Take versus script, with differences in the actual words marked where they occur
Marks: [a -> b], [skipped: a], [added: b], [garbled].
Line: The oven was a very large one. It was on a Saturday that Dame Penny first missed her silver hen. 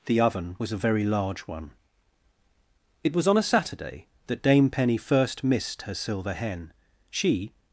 The oven was a very large one. It was on a Saturday that Dame Penny first missed her silver hen. [added: She]